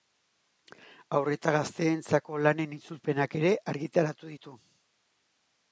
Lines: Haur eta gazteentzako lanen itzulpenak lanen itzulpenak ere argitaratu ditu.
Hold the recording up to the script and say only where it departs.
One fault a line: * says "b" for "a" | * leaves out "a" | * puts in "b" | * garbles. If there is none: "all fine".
* leaves out "lanen itzulpenak"